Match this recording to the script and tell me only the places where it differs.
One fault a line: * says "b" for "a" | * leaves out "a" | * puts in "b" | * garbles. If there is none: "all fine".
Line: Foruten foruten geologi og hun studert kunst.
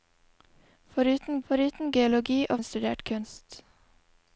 all fine